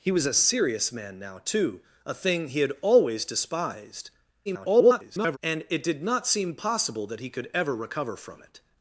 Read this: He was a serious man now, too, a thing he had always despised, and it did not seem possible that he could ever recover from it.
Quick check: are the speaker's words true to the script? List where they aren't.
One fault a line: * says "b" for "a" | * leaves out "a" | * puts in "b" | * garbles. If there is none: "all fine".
* garbles